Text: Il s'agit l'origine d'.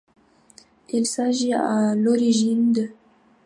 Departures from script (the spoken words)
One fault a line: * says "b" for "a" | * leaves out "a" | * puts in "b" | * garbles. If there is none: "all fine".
* puts in "à"